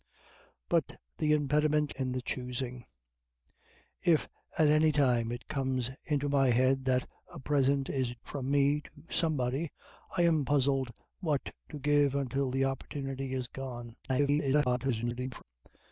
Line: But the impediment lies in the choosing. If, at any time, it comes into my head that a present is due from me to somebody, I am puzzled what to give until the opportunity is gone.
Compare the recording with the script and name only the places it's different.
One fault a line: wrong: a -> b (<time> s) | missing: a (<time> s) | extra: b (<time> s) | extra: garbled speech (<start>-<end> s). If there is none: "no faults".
missing: lies (1.9 s)
missing: due (8.2 s)
extra: garbled speech (14.0-15.4 s)